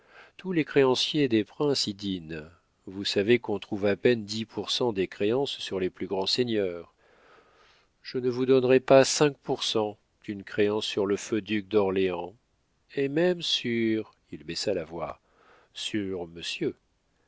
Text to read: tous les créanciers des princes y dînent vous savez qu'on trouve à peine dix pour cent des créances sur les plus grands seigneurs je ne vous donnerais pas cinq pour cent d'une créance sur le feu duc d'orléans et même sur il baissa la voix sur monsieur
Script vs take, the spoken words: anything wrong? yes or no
no